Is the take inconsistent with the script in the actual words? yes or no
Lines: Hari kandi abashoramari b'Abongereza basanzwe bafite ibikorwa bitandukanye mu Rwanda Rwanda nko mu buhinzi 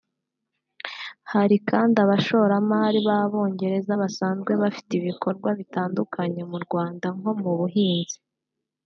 yes